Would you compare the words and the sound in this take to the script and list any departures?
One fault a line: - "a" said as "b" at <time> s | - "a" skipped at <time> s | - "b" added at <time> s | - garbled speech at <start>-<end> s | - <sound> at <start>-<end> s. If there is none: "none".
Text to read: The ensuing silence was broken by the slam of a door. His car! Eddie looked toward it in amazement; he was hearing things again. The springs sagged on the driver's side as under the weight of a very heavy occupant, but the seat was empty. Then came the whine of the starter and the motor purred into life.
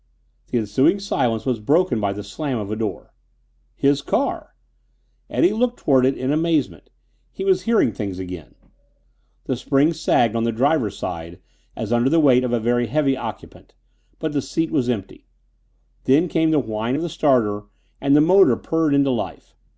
none